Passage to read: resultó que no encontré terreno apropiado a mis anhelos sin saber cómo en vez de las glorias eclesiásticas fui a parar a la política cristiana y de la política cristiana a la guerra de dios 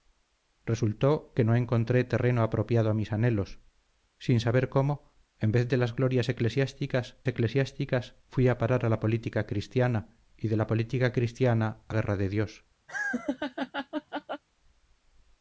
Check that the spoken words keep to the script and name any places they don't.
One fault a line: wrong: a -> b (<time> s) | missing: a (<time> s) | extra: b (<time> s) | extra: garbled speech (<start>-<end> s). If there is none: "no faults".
extra: eclesiásticas (7.3 s)
missing: la (11.9 s)